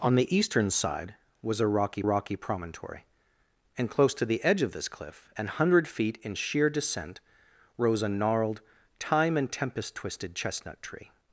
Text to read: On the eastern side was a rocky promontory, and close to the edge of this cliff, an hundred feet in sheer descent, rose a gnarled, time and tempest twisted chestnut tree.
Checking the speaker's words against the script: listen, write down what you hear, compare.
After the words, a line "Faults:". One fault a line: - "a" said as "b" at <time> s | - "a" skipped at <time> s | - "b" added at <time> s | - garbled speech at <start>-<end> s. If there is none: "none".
On the eastern side was a rocky rocky promontory, and close to the edge of this cliff, an hundred feet in sheer descent, rose a gnarled, time and tempest twisted chestnut tree.
Faults:
- "rocky" added at 2.0 s